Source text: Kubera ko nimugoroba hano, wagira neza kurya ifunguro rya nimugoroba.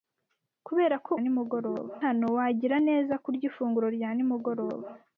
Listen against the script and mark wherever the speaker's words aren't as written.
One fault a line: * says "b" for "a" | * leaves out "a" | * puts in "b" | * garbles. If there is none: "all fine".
all fine